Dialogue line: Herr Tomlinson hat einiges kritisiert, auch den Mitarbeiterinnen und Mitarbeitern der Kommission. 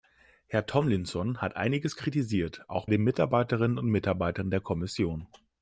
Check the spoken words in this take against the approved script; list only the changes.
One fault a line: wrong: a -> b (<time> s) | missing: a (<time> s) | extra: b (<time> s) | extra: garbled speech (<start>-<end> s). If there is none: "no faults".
no faults